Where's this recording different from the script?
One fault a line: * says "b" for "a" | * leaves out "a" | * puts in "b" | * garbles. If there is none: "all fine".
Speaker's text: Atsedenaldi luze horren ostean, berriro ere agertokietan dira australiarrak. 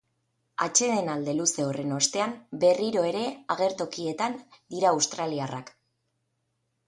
all fine